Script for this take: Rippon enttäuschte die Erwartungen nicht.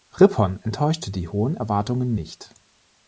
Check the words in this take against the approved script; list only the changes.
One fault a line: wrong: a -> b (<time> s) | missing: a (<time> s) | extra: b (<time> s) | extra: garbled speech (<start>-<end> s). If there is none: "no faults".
extra: hohen (1.3 s)